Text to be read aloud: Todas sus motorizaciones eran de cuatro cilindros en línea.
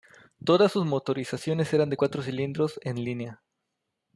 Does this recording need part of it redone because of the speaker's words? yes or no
no